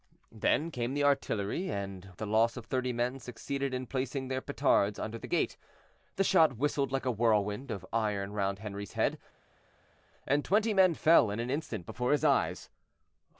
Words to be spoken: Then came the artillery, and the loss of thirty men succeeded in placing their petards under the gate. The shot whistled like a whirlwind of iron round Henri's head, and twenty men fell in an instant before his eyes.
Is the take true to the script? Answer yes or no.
yes